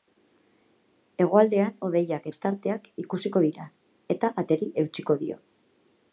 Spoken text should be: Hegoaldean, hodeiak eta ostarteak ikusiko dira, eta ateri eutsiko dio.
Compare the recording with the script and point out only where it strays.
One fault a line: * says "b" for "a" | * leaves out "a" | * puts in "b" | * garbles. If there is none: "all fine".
* leaves out "eta"